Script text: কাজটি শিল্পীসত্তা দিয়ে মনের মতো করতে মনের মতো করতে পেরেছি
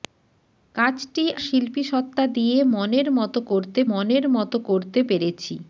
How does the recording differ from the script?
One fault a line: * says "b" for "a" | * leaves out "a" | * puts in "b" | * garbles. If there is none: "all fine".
all fine